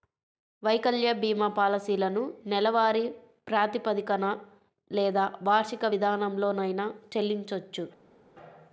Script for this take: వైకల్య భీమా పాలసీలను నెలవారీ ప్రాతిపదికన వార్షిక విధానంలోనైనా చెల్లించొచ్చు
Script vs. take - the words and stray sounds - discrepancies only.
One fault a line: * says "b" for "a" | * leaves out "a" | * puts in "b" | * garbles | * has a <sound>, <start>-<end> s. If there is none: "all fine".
* puts in "లేదా"